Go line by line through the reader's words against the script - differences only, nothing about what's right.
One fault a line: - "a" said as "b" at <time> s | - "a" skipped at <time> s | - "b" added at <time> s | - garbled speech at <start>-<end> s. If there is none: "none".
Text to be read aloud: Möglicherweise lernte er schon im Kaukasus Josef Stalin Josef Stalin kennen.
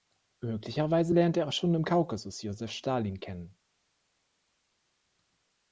- "Josef Stalin" skipped at 3.2 s